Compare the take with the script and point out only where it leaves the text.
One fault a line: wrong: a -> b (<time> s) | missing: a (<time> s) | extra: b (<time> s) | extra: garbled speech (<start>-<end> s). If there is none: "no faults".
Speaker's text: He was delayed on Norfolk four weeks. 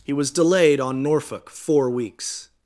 no faults